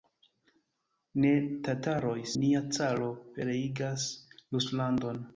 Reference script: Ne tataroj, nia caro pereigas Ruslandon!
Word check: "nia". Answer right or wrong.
right